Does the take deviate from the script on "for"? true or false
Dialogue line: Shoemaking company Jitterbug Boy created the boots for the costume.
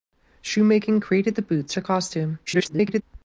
true